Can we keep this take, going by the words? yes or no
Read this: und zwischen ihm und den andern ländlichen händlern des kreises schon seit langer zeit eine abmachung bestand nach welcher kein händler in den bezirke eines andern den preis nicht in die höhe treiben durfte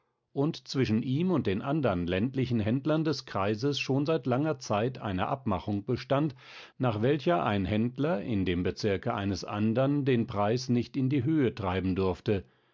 no